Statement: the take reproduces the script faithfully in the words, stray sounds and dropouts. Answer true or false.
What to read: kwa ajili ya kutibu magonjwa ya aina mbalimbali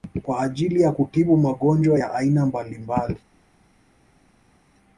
true